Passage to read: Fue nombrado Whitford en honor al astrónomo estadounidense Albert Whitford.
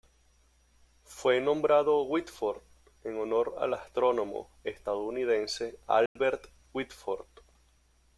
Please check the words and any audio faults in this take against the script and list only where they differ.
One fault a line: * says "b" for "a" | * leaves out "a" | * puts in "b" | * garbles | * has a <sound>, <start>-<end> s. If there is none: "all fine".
* has a dropout, 6.1-6.2 s